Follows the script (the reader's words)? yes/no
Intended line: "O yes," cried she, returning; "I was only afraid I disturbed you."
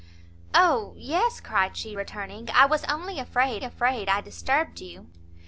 no